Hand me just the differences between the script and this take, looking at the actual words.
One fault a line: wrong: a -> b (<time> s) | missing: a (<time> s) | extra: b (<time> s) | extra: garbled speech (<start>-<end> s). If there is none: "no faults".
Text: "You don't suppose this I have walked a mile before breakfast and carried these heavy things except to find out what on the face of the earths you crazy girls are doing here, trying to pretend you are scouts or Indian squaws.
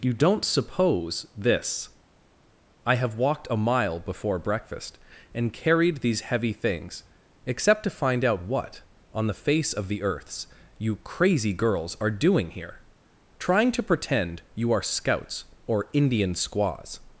no faults